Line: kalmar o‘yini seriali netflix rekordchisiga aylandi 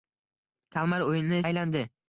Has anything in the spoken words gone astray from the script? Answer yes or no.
yes